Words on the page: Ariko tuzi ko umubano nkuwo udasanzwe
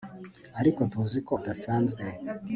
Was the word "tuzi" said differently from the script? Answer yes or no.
no